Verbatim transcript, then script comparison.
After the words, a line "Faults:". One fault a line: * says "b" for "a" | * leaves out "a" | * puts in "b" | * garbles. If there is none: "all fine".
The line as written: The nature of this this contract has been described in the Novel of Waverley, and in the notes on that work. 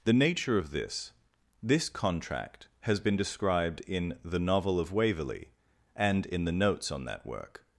The nature of this this contract has been described in the Novel of Waverley, and in the notes on that work.
Faults:
all fine